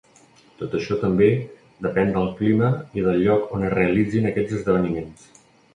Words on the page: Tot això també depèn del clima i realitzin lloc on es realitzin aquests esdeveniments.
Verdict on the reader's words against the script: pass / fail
fail